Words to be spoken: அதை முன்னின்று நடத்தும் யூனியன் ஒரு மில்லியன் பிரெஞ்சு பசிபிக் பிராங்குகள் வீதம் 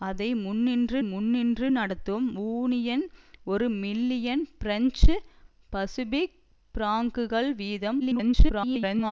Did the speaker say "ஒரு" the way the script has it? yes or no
yes